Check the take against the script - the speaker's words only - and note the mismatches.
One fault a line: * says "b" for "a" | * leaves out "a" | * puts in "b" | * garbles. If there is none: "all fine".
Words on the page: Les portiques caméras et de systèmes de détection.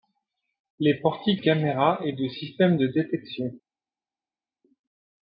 all fine